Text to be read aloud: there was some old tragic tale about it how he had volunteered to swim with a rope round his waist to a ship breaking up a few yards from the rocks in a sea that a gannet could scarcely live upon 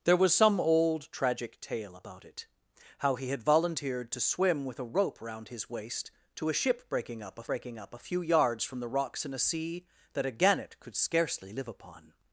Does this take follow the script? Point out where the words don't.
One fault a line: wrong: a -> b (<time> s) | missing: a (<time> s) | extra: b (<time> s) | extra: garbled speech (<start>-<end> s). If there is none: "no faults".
extra: breaking up a (7.5 s)